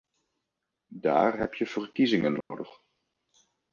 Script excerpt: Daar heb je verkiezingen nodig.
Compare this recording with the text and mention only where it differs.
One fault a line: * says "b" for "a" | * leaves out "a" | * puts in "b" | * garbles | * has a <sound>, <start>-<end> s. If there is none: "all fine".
* has a dropout, 2.4-2.5 s